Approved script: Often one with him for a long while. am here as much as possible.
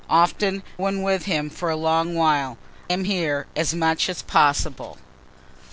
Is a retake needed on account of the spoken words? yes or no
no